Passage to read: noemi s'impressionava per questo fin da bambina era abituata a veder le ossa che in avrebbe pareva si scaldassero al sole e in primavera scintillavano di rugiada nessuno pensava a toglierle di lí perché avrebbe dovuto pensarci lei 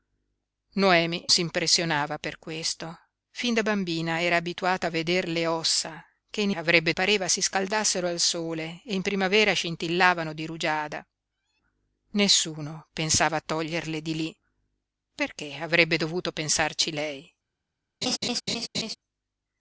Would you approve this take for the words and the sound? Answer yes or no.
no